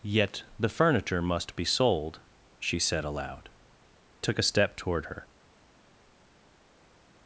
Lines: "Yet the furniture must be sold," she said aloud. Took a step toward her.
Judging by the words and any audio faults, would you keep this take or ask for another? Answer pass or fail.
pass